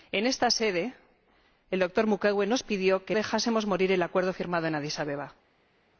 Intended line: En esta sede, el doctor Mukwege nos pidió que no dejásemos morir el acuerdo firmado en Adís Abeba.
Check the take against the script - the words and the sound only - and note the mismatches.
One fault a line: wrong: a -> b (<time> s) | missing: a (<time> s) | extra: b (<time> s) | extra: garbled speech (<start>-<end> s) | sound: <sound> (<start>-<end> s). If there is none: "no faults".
missing: no (3.1 s)